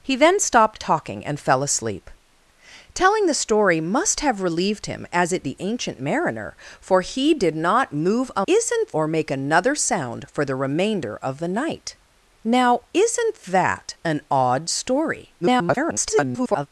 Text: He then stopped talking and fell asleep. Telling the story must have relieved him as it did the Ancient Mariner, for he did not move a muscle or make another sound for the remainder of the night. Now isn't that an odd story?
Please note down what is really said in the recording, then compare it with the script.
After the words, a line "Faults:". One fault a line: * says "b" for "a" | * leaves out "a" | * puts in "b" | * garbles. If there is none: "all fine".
He then stopped talking and fell asleep. Telling the story must have relieved him as it the Ancient Mariner, for he did not move a isn't or make another sound for the remainder of the night. Now isn't that an odd story? [garbled]
Faults:
* leaves out "did"
* says "isn't" for "muscle"
* garbles